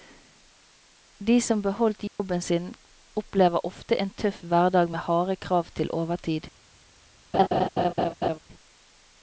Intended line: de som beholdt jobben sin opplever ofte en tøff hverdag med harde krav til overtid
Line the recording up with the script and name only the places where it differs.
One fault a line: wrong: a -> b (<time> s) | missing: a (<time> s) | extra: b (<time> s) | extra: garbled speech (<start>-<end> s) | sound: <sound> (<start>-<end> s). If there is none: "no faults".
sound: dropout (2.1-2.2 s)
sound: laugh (7.3-8.4 s)